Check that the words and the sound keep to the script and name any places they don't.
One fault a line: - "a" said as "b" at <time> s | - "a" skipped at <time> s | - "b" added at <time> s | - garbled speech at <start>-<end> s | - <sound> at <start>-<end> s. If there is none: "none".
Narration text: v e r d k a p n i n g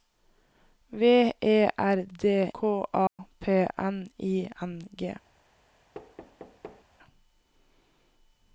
- dropout at 3.1-3.2 s
- thud at 5.9-6.9 s